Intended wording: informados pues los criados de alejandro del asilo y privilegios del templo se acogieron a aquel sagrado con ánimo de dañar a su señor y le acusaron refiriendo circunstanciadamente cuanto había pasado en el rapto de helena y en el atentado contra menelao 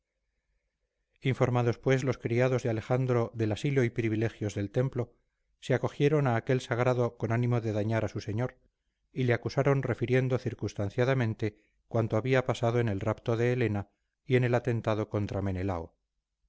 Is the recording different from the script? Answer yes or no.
no